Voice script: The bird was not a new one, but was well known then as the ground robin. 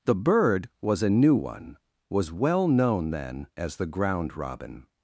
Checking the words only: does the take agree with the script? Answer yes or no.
no